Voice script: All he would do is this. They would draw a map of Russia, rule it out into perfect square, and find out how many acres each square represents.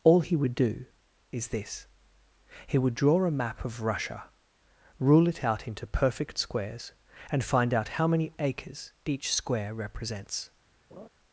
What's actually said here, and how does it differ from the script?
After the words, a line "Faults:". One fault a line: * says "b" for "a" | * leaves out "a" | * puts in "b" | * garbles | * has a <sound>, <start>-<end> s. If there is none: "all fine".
All he would do is this. He would draw a map of Russia, rule it out into perfect squares, and find out how many acres each square represents.
Faults:
* says "He" for "They"
* says "squares" for "square"
* has a laugh, 10.9-11.1 s